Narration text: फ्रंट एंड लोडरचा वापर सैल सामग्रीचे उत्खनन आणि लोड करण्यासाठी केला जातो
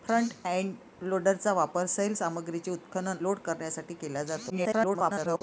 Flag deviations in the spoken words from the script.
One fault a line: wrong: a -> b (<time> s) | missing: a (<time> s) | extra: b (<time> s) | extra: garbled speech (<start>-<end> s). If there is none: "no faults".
missing: आणि (3.2 s)
extra: garbled speech (4.5-5.4 s)